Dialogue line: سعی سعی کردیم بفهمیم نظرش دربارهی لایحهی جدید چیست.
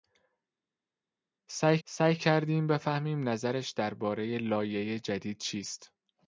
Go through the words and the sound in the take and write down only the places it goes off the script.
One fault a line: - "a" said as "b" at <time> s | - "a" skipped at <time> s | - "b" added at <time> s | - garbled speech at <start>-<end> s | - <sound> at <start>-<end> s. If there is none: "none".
none